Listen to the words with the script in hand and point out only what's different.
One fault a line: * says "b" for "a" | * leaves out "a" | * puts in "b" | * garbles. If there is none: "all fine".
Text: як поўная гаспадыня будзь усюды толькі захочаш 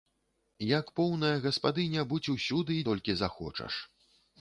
all fine